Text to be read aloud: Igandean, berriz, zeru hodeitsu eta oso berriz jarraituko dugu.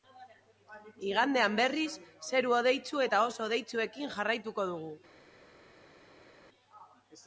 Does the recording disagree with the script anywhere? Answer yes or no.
yes